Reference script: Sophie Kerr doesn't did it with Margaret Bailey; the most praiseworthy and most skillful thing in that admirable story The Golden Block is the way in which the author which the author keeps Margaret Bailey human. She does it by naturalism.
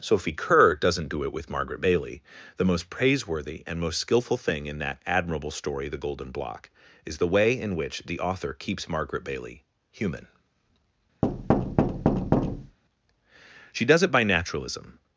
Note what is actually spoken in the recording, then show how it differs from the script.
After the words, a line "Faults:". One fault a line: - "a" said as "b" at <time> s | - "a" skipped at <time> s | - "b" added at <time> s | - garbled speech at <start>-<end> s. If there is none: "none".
Sophie Kerr doesn't do it with Margaret Bailey; the most praiseworthy and most skillful thing in that admirable story The Golden Block is the way in which the author keeps Margaret Bailey human. She does it by naturalism.
Faults:
- "did" said as "do" at 1.1 s
- "which the author" skipped at 8.5 s